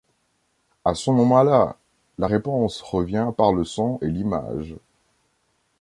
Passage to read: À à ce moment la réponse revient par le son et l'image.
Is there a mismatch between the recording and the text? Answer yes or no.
yes